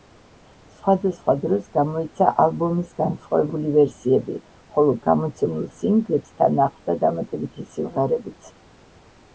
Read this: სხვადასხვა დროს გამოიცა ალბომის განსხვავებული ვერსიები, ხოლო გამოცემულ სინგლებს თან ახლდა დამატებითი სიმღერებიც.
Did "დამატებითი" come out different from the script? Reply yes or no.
no